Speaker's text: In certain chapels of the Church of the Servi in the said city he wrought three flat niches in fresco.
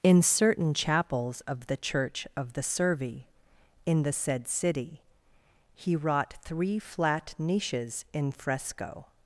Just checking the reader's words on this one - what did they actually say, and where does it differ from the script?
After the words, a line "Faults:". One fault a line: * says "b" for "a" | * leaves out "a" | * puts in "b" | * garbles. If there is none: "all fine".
In certain chapels of the Church of the Servi in the said city he wrought three flat niches in fresco.
Faults:
all fine